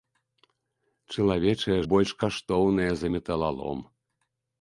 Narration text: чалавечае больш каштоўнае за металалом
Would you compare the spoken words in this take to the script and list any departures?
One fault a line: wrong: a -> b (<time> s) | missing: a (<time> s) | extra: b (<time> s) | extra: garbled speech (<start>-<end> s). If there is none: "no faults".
no faults